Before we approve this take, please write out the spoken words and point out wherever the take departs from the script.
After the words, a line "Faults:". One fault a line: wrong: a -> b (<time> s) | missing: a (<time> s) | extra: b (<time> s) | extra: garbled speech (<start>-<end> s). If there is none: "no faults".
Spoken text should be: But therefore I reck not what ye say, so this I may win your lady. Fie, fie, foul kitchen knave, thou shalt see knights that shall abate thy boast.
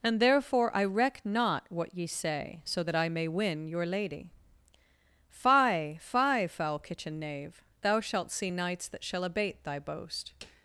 And therefore I reck not what ye say, so that I may win your lady. Fie, fie, foul kitchen knave, thou shalt see knights that shall abate thy boast.
Faults:
wrong: But -> And (0.0 s)
wrong: this -> that (2.8 s)